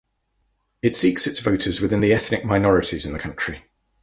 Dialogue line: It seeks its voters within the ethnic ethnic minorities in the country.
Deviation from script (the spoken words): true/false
true